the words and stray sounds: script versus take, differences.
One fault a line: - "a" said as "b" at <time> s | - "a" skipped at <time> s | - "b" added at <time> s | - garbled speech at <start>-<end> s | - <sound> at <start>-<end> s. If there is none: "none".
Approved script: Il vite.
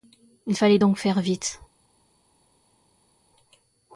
- "fallait donc faire" added at 0.5 s